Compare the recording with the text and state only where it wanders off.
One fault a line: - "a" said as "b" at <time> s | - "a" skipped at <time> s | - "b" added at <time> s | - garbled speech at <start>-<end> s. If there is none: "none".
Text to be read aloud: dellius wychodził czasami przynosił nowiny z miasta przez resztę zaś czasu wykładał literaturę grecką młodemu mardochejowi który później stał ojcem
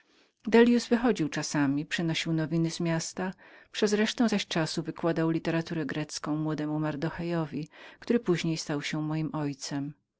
- "się moim" added at 8.8 s